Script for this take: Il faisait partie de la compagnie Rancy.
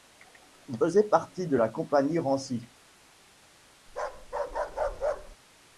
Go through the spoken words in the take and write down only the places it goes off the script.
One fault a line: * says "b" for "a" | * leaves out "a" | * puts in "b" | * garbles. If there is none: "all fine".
all fine